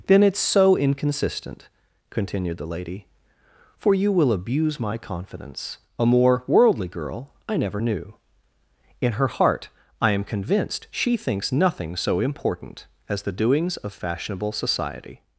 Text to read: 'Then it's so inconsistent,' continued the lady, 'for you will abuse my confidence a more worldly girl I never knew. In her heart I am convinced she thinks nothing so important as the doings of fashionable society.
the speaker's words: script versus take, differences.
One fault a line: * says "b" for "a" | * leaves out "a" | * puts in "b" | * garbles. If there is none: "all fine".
all fine